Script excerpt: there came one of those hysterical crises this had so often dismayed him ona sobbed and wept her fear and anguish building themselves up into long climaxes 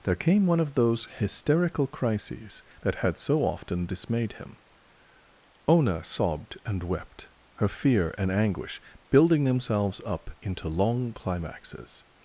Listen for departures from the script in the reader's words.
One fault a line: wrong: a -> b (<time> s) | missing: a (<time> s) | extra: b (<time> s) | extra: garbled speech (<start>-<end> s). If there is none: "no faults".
wrong: this -> that (2.8 s)